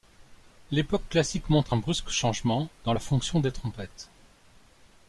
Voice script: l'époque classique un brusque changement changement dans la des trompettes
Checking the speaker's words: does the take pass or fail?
fail